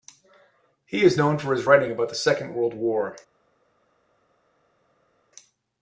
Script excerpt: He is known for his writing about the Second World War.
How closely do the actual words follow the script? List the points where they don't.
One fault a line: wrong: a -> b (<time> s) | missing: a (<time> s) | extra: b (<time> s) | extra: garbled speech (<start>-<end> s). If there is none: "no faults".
no faults